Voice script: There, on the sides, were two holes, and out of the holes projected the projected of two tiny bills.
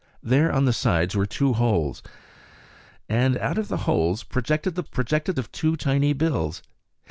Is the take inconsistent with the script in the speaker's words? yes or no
no